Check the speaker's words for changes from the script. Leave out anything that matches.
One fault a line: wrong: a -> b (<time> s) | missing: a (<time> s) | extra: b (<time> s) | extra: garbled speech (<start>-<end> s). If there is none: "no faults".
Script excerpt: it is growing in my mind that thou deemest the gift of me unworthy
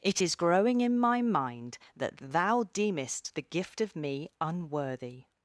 no faults